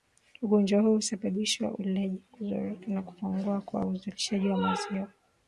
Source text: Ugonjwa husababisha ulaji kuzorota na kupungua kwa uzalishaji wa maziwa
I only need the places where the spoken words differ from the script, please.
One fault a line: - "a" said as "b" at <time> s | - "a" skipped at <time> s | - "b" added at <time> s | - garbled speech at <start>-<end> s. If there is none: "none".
- "huu" added at 0.8 s